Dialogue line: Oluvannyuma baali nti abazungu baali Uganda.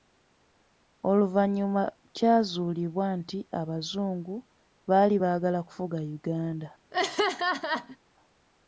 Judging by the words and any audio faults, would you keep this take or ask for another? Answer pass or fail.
fail